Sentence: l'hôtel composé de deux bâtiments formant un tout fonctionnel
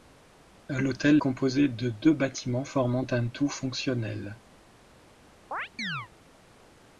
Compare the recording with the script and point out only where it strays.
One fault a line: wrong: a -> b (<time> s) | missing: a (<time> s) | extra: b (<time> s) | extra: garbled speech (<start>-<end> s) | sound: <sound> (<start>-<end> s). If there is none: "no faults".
sound: chirp (5.5-6.1 s)